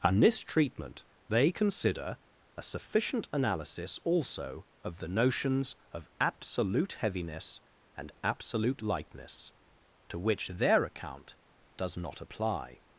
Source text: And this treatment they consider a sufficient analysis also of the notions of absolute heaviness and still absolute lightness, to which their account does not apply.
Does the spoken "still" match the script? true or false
false